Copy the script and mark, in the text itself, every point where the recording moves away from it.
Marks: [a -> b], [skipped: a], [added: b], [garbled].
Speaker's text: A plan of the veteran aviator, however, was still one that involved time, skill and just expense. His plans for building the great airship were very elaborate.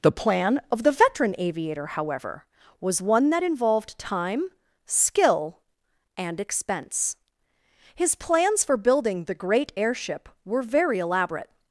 [A -> The] plan of the veteran aviator, however, was [skipped: still] one that involved time, skill and [skipped: just] expense. His plans for building the great airship were very elaborate.